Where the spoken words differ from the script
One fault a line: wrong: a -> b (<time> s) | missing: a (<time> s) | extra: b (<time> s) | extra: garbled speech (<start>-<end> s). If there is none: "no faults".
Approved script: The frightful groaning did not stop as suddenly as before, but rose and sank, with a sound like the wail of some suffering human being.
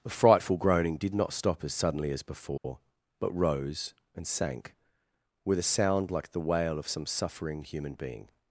no faults